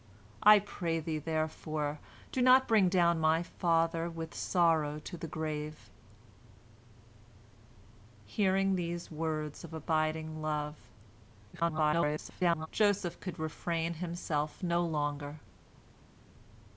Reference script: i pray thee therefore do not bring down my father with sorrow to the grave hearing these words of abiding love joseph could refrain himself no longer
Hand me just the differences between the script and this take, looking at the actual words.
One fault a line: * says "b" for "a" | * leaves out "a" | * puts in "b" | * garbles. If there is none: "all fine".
* garbles